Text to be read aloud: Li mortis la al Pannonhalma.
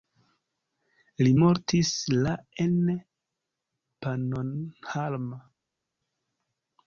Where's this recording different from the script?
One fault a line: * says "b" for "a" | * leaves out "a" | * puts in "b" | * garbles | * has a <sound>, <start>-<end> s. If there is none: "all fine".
* says "en" for "al"